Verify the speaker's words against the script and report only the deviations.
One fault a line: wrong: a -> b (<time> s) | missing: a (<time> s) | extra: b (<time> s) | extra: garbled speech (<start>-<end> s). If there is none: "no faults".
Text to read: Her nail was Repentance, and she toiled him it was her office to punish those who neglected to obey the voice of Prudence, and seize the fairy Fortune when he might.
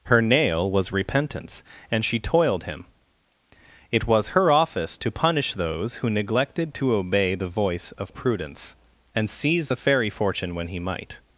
no faults